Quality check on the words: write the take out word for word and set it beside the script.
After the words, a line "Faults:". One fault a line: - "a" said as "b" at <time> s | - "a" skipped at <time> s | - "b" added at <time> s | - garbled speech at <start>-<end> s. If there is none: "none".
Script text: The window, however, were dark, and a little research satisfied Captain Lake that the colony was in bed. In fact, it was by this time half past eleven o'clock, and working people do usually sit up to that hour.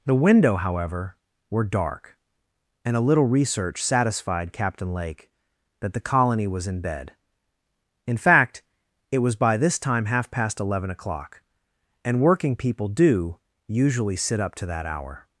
The window, however, were dark, and a little research satisfied Captain Lake that the colony was in bed. In fact, it was by this time half past eleven o'clock, and working people do usually sit up to that hour.
Faults:
none